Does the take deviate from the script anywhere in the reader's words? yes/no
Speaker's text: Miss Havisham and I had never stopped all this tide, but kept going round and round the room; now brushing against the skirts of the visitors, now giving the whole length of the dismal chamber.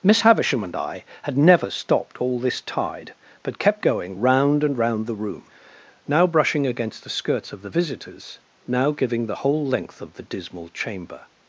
no